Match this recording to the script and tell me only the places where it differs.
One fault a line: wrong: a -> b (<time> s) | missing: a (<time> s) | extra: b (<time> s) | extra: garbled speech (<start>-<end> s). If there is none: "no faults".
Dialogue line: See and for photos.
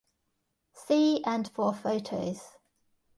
no faults